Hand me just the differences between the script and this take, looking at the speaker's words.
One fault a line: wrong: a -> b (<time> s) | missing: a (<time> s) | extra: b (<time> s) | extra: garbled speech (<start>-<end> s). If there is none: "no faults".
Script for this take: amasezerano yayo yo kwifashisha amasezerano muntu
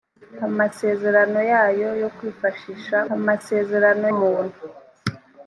no faults